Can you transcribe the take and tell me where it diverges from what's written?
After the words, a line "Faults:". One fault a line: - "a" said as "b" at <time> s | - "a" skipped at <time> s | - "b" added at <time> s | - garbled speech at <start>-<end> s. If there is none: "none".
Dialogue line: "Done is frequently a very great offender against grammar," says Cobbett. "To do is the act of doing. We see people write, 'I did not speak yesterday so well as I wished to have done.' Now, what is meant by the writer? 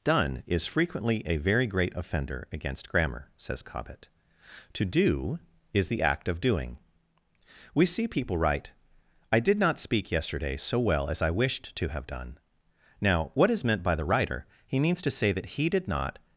"Done is frequently a very great offender against grammar," says Cobbett. "To do is the act of doing. We see people write, 'I did not speak yesterday so well as I wished to have done.' Now, what is meant by the writer? He means to say that he did not
Faults:
- "He means to say that he did not" added at 14.7 s